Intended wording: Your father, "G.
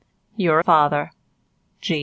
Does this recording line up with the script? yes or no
yes